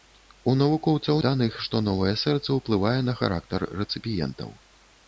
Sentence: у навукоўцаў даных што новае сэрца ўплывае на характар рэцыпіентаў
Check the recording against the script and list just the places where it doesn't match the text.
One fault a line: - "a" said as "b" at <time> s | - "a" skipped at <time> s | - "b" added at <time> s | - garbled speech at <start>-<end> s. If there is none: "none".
none